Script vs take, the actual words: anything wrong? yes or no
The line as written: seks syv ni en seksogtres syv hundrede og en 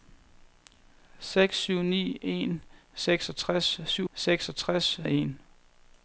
yes